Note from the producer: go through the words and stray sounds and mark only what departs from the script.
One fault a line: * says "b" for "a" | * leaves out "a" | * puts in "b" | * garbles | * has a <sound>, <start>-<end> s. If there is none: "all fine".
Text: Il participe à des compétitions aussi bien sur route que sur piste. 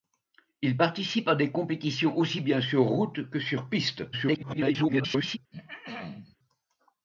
* garbles
* has a throat clearing, 5.5-6.4 s